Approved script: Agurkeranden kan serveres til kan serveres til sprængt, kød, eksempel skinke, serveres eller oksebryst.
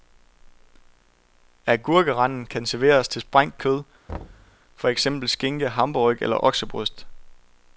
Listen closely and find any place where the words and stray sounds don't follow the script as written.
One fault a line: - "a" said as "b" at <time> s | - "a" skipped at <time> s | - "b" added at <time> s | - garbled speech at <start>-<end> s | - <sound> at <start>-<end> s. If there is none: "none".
- "kan serveres til" skipped at 3.2 s
- thud at 4.1-4.6 s
- "for" added at 4.8 s
- "serveres" said as "hamburgerryg" at 5.7 s